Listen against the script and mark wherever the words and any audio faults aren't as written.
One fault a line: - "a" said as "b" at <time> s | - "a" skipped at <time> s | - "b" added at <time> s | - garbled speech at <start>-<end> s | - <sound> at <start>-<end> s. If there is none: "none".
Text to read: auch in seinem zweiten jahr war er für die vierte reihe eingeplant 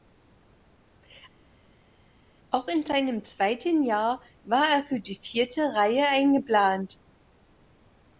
none